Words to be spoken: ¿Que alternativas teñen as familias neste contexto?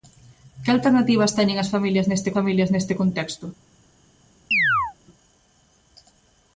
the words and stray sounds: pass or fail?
fail